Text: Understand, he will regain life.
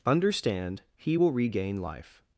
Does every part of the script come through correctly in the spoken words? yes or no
yes